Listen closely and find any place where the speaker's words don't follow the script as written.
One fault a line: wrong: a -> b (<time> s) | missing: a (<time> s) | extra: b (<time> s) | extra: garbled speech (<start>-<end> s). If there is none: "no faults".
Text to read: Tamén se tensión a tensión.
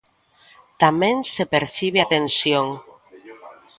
wrong: tensión -> percibe (1.5 s)